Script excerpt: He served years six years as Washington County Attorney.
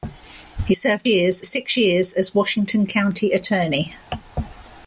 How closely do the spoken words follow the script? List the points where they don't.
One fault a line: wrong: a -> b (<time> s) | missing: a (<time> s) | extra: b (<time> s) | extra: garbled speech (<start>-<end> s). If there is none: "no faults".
no faults